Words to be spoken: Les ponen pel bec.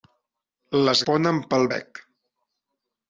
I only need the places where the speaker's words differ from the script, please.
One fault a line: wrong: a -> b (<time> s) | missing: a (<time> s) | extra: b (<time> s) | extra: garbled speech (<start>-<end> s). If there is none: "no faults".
no faults